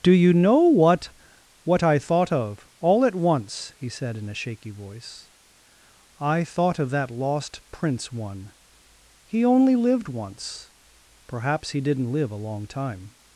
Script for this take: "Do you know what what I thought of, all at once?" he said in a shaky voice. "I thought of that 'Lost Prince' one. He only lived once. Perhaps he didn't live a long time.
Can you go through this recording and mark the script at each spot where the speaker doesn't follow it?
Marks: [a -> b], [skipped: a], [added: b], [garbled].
"Do you know what what I thought of, all at once?" he said in a shaky voice. "I thought of that 'Lost Prince' one. He only lived once. Perhaps he didn't live a long time.